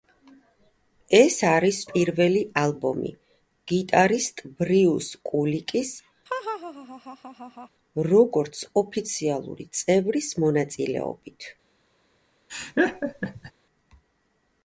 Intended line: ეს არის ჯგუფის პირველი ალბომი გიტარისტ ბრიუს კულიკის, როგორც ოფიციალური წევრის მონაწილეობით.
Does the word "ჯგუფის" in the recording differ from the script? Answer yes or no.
yes